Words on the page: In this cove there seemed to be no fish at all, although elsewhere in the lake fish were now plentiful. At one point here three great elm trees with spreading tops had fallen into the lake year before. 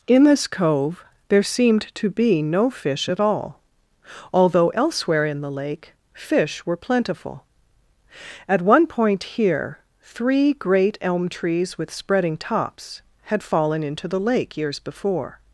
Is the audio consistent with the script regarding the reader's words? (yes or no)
no